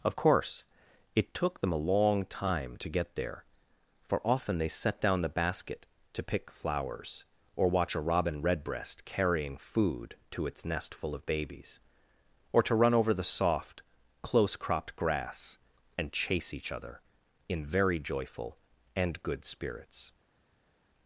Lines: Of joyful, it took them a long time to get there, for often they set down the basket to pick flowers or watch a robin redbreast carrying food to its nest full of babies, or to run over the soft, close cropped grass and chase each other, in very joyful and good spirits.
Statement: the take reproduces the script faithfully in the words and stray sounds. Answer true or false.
false